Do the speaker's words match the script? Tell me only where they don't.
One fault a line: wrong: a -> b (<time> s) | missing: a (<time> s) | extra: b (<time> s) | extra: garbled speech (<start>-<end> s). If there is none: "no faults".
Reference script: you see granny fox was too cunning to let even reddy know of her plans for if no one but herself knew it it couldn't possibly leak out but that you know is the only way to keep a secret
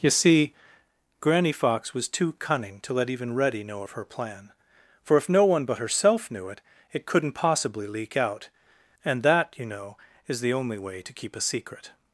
wrong: plans -> plan (4.1 s)
wrong: but -> and (9.0 s)